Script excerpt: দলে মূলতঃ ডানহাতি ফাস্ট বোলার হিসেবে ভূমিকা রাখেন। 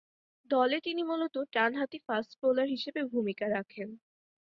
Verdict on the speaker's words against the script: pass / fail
fail